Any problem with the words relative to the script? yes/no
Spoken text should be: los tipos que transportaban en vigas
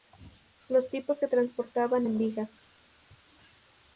no